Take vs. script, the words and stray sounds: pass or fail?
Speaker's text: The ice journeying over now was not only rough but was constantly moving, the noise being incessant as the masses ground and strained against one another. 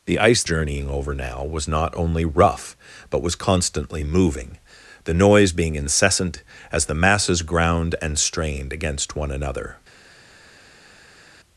pass